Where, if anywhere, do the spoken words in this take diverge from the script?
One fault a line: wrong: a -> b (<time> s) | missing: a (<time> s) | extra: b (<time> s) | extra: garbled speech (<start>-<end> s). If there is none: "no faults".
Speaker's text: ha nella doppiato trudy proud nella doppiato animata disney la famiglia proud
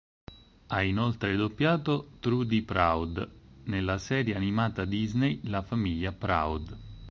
wrong: nella -> inoltre (0.8 s)
wrong: doppiato -> serie (4.0 s)